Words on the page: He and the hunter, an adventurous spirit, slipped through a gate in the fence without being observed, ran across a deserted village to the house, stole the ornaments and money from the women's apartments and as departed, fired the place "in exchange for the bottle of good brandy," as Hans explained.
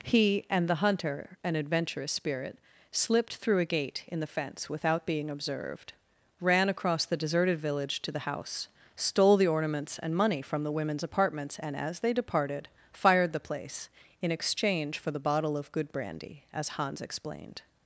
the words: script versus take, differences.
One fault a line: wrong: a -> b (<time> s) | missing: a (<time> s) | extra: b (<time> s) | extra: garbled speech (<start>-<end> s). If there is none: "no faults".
wrong: a -> the (7.1 s)
extra: they (12.0 s)